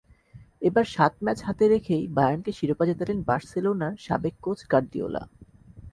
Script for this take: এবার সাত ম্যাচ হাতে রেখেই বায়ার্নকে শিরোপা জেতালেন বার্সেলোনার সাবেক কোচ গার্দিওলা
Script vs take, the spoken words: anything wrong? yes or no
no